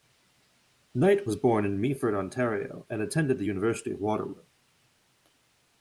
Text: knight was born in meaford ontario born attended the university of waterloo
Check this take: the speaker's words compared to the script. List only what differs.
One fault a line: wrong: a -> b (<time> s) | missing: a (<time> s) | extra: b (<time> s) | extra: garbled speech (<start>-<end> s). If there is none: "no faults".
wrong: born -> and (2.9 s)